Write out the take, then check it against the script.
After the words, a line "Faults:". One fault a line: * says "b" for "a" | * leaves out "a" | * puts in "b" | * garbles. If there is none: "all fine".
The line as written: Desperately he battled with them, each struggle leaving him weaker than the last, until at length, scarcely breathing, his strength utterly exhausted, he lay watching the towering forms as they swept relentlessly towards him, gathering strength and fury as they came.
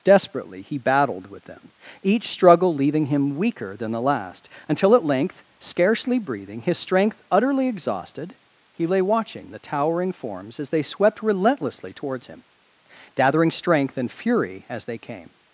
Desperately he battled with them, each struggle leaving him weaker than the last, until at length, scarcely breathing, his strength utterly exhausted, he lay watching the towering forms as they swept relentlessly towards him, gathering strength and fury as they came.
Faults:
all fine